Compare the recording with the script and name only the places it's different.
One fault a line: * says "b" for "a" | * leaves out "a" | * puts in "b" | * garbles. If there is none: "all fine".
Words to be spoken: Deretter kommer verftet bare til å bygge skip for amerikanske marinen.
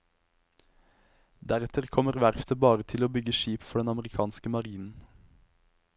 * puts in "den"